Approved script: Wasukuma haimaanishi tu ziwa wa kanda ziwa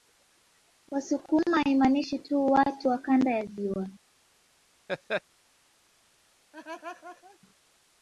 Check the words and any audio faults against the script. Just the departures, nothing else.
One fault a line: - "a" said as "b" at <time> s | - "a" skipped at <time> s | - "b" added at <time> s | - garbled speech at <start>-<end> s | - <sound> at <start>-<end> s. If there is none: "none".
- "ziwa" said as "watu" at 2.5 s
- "ya" added at 3.3 s
- laugh at 4.9-5.2 s
- laugh at 6.5-7.4 s